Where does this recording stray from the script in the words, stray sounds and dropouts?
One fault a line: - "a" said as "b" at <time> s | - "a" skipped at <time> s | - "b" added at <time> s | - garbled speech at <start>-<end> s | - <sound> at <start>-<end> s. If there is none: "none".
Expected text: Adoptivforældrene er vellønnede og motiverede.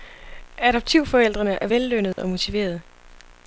- dropout at 2.1-2.2 s